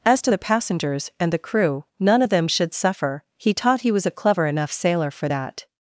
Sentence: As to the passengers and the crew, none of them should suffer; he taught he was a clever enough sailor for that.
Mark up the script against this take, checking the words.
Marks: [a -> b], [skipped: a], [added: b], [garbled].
As to the passengers and the crew, none of them should suffer; he taught he was a clever enough sailor for that.